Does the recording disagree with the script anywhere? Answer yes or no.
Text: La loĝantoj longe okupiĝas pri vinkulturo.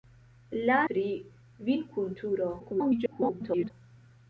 yes